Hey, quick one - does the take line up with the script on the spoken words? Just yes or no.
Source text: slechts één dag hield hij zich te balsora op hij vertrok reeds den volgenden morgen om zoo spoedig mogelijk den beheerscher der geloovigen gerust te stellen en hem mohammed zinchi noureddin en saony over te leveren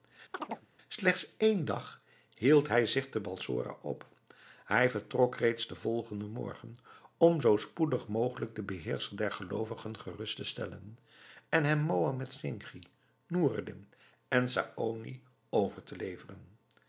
yes